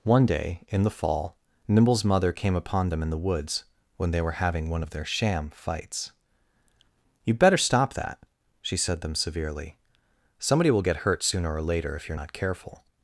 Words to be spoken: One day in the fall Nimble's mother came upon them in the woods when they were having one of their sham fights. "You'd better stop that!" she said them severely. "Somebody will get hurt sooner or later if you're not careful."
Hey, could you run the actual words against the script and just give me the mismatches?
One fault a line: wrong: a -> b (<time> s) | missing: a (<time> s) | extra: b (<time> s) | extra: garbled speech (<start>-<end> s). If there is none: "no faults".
no faults